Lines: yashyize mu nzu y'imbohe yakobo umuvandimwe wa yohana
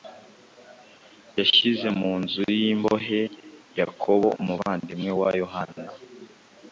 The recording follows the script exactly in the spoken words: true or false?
true